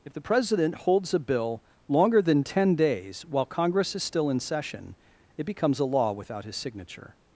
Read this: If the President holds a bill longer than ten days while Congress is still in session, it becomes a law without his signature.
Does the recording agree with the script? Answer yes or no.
yes